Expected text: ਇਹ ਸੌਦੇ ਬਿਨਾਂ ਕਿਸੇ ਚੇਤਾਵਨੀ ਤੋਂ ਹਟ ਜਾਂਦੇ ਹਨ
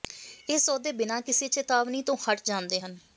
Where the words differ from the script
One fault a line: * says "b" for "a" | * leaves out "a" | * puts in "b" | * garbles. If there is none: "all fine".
all fine